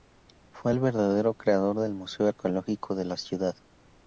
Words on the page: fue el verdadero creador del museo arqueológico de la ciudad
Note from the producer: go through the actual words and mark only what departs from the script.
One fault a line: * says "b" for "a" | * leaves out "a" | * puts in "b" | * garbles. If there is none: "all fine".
all fine